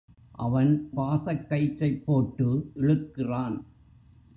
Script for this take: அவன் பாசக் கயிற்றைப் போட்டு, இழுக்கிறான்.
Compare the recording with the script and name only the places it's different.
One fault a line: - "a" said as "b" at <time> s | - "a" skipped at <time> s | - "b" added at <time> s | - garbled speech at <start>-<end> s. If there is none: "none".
none